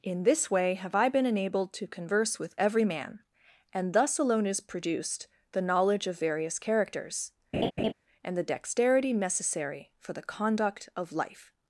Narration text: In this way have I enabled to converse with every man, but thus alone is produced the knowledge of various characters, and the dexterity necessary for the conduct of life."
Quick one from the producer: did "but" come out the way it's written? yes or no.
no